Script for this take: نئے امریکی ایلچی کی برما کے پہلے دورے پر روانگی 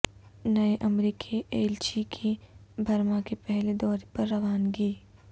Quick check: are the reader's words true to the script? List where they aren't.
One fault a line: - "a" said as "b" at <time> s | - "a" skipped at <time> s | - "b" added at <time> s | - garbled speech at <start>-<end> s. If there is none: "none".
none